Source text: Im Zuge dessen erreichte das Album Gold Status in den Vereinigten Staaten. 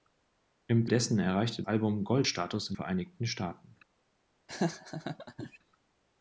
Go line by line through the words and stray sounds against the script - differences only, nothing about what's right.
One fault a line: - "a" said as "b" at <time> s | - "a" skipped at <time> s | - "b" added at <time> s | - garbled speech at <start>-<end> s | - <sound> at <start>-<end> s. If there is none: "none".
- "Zuge" skipped at 0.9 s
- "das" skipped at 1.6 s
- "den" skipped at 2.8 s
- laugh at 4.5-5.6 s